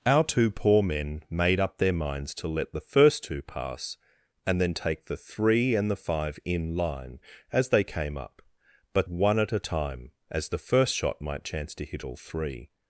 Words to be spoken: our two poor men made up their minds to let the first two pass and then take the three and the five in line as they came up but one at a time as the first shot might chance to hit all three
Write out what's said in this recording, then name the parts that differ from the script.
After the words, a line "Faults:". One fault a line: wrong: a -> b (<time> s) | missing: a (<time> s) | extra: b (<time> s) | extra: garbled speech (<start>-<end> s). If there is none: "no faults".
our two poor men made up their minds to let the first two pass and then take the three and the five in line as they came up but one at a time as the first shot might chance to hit all three
Faults:
no faults